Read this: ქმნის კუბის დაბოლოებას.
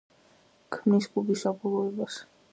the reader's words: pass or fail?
pass